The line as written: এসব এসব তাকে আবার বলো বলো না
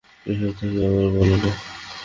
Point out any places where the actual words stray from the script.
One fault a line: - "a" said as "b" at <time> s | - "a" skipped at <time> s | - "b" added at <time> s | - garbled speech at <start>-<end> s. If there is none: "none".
- "এসব" skipped at 0.5 s
- "বলো" skipped at 1.4 s